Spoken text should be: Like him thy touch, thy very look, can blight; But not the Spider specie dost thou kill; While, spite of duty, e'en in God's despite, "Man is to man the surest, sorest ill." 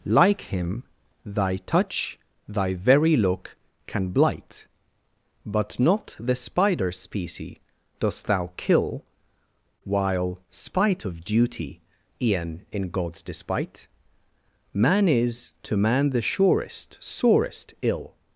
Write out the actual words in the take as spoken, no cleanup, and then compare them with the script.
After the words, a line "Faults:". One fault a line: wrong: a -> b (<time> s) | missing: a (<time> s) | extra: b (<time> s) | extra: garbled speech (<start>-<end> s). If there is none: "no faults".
Like him thy touch, thy very look, can blight; But not the Spider specie dost thou kill; While, spite of duty, e'en in God's despite, "Man is to man the surest, sorest ill."
Faults:
no faults